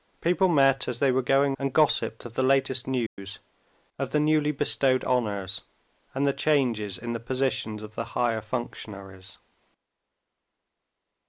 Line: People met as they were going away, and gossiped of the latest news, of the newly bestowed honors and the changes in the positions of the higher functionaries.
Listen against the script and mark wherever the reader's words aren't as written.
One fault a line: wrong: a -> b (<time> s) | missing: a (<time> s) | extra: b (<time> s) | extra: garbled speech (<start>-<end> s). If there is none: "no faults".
missing: away (1.6 s)